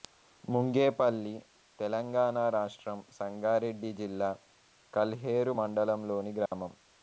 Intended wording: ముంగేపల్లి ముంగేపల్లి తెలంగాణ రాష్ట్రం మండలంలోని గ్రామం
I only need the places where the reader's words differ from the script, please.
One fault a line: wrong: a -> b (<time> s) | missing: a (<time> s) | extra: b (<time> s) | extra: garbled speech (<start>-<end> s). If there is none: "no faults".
missing: ముంగేపల్లి (1.3 s)
extra: సంగారెడ్డి జిల్లా కల్హేరు (3.2 s)